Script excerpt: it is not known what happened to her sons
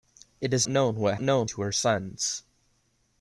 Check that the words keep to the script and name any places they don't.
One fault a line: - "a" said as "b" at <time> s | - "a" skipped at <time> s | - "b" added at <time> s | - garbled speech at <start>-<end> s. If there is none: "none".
- "not" skipped at 0.7 s
- "happened" said as "known" at 1.2 s